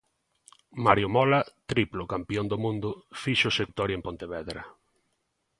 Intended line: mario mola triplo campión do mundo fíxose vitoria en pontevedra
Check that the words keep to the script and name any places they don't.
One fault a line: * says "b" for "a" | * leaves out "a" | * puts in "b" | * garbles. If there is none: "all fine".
all fine